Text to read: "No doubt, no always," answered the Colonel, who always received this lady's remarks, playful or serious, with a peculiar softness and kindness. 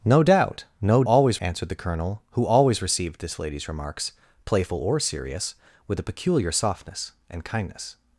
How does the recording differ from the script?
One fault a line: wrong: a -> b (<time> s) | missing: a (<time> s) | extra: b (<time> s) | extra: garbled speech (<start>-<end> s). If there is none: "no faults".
no faults